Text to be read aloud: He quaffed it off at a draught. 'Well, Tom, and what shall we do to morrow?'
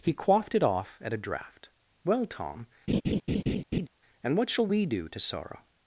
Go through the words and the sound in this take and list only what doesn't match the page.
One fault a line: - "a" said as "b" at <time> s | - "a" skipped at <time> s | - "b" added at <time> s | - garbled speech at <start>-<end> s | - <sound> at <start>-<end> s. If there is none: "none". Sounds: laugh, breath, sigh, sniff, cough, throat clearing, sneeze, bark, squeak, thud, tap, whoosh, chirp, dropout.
- laugh at 2.9-3.9 s
- "morrow" said as "sorrow" at 5.2 s